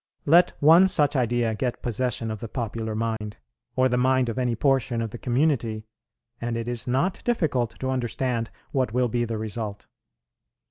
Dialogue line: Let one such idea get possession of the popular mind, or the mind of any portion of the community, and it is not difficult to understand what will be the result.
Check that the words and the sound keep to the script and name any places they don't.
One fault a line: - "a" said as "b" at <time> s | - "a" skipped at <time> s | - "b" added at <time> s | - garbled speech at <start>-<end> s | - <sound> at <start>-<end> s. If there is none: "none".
- dropout at 3.2-3.2 s